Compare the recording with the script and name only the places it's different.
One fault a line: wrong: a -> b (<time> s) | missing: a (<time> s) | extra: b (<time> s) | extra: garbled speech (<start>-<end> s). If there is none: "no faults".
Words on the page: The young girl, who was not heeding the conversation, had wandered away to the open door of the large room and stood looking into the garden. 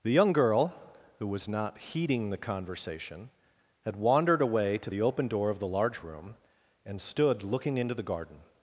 no faults